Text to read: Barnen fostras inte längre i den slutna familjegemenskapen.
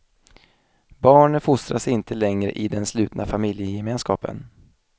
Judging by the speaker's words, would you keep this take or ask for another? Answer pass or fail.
pass